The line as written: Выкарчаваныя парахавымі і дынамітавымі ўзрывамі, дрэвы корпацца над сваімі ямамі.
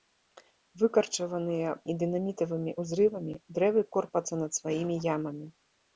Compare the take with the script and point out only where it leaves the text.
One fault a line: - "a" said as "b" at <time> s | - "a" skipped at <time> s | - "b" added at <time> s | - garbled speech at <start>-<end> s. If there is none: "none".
- "парахавымі" skipped at 1.7 s